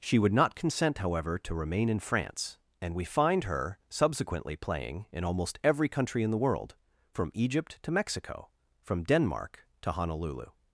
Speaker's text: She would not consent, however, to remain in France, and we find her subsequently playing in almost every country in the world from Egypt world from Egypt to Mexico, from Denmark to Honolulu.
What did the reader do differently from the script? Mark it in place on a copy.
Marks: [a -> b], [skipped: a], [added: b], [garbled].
She would not consent, however, to remain in France, and we find her subsequently playing in almost every country in the world from Egypt [skipped: world from Egypt] to Mexico, from Denmark to Honolulu.